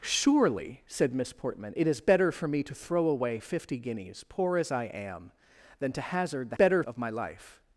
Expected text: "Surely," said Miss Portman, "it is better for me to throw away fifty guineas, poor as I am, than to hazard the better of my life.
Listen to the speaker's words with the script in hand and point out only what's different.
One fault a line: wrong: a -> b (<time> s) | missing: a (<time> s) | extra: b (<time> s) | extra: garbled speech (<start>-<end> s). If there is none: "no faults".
no faults